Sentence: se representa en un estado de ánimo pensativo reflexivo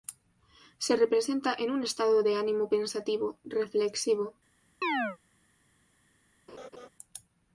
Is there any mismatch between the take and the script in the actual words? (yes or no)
no